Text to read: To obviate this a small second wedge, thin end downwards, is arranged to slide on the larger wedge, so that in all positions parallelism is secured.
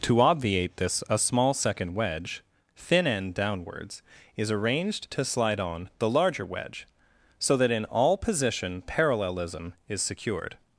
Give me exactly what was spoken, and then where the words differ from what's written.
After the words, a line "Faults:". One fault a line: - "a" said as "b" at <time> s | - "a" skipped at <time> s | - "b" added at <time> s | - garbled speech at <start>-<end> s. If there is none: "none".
To obviate this a small second wedge, thin end downwards, is arranged to slide on the larger wedge, so that in all position parallelism is secured.
Faults:
- "positions" said as "position" at 8.2 s